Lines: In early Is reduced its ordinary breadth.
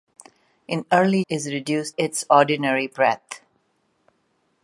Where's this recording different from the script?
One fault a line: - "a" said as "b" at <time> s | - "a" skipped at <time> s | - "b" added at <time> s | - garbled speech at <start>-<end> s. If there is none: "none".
none